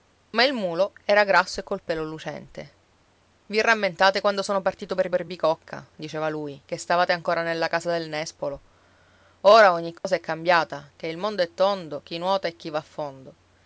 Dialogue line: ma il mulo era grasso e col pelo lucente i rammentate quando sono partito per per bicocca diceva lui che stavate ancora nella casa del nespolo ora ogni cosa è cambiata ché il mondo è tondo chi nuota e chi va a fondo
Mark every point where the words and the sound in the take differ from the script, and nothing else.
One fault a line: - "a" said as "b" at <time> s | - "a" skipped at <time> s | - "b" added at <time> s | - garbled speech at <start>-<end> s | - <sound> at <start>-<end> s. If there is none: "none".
- dropout at 10.0-10.0 s